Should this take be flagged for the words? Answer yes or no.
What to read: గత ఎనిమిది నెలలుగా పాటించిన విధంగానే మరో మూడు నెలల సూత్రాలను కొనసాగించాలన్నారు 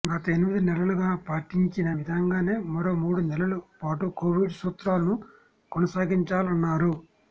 yes